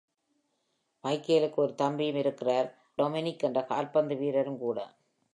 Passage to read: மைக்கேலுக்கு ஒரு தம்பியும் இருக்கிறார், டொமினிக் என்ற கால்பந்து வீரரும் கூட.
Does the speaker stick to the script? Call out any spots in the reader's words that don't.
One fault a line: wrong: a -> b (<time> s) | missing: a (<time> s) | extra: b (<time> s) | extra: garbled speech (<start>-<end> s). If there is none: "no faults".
no faults